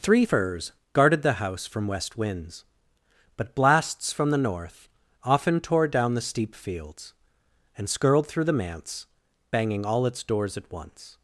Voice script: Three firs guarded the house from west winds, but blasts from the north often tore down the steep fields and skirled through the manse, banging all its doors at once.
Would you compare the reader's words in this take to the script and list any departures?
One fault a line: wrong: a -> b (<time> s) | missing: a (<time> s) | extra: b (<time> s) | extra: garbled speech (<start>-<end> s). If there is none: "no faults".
no faults